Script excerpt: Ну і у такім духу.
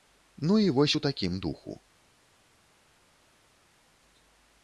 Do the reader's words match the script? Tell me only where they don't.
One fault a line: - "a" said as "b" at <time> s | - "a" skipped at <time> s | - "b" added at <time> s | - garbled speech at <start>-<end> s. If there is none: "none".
- "вось" added at 0.7 s